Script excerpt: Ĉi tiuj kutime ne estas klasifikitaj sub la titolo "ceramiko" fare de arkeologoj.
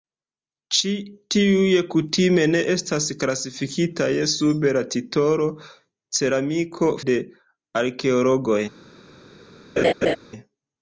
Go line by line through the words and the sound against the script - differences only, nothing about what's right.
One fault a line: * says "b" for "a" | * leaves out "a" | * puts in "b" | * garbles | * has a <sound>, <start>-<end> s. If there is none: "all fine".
* leaves out "fare"
* has a laugh, 9.8-10.2 s